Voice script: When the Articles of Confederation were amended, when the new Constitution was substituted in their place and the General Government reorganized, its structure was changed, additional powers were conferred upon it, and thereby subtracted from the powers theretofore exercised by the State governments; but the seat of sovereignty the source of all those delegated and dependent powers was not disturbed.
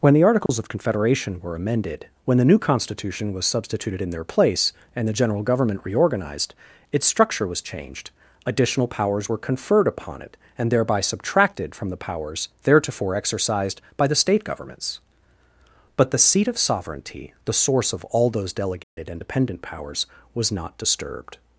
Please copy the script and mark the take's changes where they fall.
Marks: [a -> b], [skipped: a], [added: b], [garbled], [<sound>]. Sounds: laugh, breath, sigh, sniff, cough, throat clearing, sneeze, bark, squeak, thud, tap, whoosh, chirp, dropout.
When the Articles [dropout] of Confederation were amended, when the new Constitution was substituted in their place and the General Government reorganized, its structure was changed, additional powers were conferred upon it, and thereby subtracted from the powers theretofore exercised by the State governments; but the seat of sovereignty the source of all those delegated [dropout] and dependent powers was not disturbed.